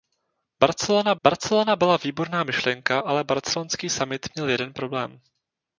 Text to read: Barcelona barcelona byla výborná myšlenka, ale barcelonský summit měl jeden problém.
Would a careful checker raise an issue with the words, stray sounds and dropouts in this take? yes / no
no